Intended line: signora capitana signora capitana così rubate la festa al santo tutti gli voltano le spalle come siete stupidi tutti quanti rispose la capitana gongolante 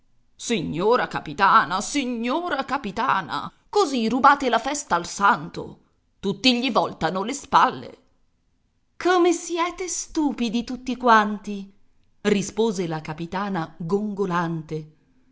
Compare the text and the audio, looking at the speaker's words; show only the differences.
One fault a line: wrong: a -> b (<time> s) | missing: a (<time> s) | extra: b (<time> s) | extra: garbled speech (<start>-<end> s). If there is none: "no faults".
no faults